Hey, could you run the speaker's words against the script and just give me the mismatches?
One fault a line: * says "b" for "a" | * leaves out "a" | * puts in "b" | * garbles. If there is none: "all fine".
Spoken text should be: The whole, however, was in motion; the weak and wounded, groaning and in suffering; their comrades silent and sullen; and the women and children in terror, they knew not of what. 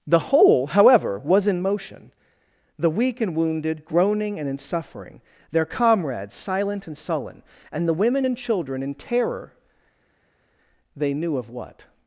* leaves out "not"